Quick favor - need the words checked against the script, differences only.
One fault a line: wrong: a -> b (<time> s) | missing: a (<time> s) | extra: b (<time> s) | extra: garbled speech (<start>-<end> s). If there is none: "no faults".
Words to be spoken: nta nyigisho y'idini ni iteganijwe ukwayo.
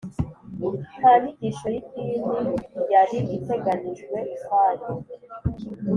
wrong: ni -> yari (2.9 s)